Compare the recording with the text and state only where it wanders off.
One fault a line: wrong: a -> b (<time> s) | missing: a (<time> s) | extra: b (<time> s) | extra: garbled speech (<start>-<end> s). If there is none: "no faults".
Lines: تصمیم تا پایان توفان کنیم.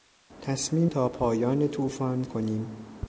no faults